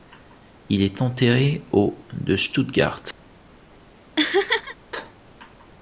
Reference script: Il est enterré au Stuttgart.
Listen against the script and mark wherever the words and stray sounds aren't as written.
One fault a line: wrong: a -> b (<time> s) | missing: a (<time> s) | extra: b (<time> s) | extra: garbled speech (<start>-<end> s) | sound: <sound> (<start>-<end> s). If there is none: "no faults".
extra: de (2.1 s)
sound: laugh (4.2-4.8 s)